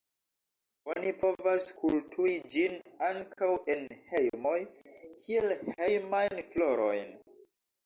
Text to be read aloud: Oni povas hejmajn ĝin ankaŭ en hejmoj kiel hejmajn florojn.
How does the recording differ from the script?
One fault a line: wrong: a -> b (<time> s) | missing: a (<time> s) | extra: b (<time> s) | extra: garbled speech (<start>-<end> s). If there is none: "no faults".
wrong: hejmajn -> kulturi (1.8 s)